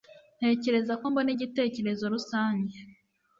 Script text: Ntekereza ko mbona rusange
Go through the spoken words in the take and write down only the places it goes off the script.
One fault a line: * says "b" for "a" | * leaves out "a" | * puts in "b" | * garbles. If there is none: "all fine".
* puts in "igitekerezo"